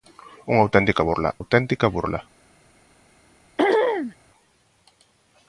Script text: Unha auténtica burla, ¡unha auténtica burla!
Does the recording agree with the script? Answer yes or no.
no